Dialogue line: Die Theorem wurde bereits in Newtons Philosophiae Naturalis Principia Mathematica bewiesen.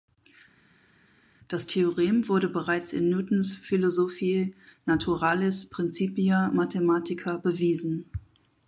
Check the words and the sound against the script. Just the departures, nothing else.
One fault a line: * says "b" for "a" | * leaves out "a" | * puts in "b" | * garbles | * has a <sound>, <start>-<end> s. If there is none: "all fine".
* says "Das" for "Die"